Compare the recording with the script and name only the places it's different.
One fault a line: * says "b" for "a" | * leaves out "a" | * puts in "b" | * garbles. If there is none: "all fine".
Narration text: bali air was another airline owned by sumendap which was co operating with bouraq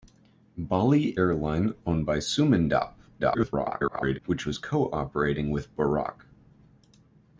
* leaves out "air was another"
* garbles